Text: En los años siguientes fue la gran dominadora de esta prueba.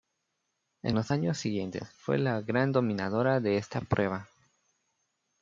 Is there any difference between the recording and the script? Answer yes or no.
no